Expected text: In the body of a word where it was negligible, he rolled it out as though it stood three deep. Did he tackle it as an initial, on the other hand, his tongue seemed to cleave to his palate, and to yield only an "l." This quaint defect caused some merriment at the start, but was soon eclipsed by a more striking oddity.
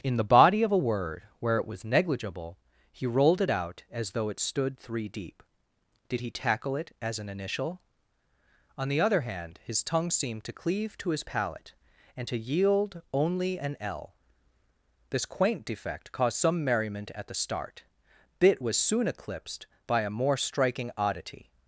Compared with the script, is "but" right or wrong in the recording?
wrong